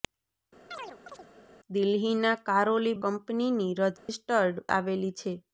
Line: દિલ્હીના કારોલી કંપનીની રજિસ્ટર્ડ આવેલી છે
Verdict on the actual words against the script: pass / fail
pass